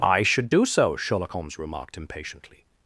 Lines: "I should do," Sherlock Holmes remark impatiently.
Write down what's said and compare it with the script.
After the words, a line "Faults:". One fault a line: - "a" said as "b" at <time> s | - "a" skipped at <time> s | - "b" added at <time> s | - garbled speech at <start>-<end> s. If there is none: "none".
"I should do so," Sherlock Holmes remarked impatiently.
Faults:
- "so" added at 0.6 s
- "remark" said as "remarked" at 1.6 s